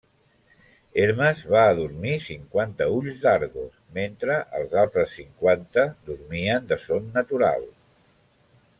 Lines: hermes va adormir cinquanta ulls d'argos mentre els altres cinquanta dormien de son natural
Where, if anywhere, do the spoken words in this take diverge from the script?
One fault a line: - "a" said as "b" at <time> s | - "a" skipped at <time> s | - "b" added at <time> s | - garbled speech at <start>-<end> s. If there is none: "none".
none